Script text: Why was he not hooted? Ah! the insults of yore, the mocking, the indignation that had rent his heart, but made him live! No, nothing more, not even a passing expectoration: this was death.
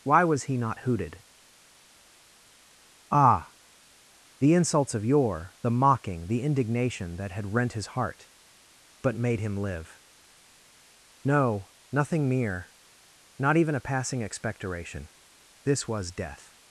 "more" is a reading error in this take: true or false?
true